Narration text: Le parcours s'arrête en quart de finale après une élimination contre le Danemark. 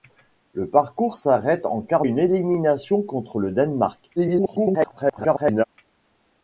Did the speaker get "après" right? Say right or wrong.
wrong